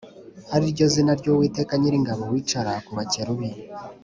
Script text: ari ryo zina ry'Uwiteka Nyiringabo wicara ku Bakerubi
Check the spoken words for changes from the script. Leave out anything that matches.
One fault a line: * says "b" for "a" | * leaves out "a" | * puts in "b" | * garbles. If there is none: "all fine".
all fine